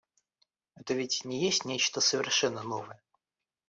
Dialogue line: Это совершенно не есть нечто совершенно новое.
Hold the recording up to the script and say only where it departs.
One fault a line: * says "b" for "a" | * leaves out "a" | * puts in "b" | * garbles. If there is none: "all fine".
* says "ведь" for "совершенно"